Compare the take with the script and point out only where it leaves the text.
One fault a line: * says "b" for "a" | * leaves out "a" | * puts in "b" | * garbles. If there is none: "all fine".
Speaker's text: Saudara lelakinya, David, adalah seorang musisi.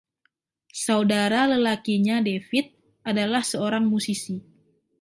all fine